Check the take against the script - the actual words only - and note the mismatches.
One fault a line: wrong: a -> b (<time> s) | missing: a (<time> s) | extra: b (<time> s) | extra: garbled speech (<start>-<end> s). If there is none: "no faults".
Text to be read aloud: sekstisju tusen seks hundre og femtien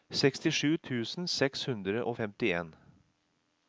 no faults